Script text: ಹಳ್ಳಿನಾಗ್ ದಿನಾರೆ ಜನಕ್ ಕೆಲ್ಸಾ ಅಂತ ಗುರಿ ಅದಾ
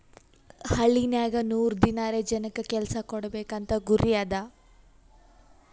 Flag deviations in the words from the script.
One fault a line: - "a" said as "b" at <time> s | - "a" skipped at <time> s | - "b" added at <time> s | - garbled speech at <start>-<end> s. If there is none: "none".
- "ನೂರ್" added at 1.5 s
- "ಕೊಡ್ಬೇಕ್" added at 3.1 s